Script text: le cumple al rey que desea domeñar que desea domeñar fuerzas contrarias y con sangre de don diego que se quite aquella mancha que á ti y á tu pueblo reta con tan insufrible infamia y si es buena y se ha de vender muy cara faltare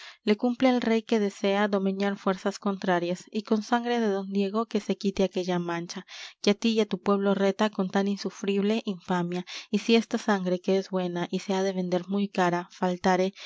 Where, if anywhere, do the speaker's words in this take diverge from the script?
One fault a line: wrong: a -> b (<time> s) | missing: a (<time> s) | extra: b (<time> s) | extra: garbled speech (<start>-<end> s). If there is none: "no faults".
missing: que desea domeñar (2.2 s)
extra: esta sangre que (10.0 s)